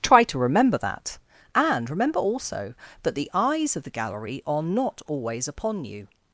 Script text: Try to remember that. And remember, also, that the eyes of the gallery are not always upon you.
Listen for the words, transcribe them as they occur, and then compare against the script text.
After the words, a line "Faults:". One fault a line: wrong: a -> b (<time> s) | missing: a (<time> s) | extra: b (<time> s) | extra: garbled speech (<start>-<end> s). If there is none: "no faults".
Try to remember that. And remember, also, that the eyes of the gallery are not always upon you.
Faults:
no faults